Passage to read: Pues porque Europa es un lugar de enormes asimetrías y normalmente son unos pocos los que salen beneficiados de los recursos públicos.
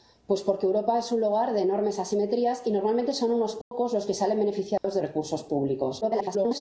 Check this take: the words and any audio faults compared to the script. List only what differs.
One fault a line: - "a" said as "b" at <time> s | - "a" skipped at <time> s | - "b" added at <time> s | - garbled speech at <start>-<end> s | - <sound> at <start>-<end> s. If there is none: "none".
- dropout at 3.6-3.7 s
- dropout at 4.8-4.8 s
- "los" skipped at 5.0 s
- garbled speech at 6.0-6.6 s